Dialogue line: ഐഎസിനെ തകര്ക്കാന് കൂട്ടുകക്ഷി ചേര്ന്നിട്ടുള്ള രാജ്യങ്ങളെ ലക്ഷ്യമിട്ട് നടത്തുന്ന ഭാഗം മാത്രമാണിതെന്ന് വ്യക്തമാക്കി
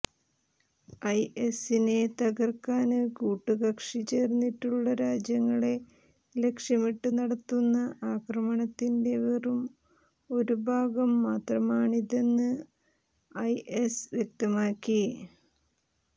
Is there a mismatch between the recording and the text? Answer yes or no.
yes